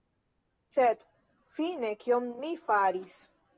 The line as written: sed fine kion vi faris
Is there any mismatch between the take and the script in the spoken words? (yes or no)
yes